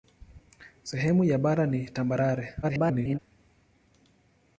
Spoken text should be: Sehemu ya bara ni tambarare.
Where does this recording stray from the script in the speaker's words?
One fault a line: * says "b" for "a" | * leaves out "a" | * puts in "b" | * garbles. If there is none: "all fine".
* garbles